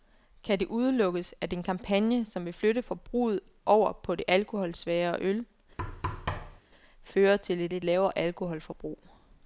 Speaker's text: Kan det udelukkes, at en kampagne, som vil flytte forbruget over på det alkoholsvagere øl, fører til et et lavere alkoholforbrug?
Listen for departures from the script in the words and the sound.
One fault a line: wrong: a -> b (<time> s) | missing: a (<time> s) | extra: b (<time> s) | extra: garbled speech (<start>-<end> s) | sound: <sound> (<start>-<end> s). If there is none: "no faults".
sound: thud (5.8-6.6 s)